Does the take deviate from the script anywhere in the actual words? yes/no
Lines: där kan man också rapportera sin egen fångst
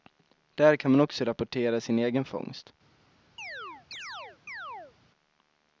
no